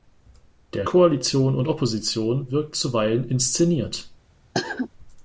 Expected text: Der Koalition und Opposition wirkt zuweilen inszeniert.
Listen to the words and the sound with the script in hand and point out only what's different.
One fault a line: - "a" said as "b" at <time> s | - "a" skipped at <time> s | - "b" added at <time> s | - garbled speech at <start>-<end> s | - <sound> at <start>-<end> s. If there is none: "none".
- cough at 4.5-4.9 s